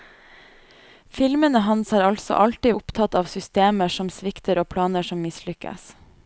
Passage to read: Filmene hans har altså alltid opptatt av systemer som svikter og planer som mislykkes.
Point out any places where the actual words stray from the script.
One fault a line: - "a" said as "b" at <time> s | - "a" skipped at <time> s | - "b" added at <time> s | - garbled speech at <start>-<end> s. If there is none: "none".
none